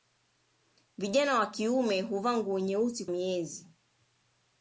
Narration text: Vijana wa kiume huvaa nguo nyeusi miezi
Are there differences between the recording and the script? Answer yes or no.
no